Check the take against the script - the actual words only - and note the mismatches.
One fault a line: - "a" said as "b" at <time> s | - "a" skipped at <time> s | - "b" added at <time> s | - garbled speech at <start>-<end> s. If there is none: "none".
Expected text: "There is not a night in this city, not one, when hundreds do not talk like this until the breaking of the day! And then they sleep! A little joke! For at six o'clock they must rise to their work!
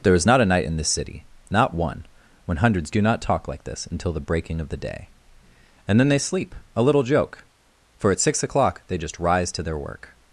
- "must" said as "just" at 9.0 s